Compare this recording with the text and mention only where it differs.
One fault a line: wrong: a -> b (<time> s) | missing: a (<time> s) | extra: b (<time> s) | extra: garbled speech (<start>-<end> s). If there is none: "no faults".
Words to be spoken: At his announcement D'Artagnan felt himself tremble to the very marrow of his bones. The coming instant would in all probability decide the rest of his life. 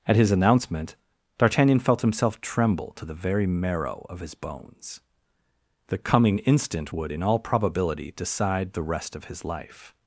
no faults